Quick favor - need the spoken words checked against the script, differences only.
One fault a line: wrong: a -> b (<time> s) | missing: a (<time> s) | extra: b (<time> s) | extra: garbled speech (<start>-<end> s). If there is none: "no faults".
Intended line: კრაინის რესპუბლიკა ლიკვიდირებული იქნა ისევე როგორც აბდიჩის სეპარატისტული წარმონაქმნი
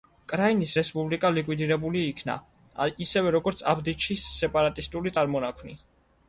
no faults